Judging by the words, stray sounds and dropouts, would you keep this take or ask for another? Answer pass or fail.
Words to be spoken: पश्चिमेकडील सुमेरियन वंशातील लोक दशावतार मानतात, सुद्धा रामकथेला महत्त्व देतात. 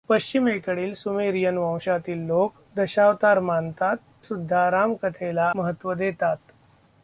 pass